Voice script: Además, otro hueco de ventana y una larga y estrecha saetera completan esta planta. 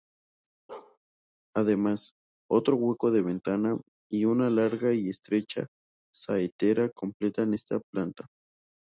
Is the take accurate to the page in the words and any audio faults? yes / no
no